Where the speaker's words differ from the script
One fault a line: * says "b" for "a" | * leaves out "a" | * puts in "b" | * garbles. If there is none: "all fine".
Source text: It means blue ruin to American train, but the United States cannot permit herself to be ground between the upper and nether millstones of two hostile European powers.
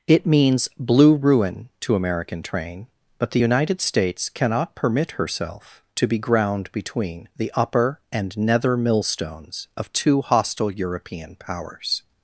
all fine